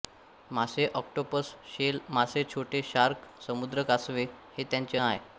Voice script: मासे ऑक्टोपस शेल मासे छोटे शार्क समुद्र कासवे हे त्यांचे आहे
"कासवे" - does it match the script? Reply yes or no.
yes